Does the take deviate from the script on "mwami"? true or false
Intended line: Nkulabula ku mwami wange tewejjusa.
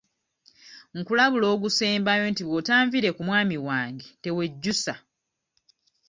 false